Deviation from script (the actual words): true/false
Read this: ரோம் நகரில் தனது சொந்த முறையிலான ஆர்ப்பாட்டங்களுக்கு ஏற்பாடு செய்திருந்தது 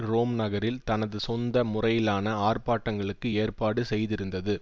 false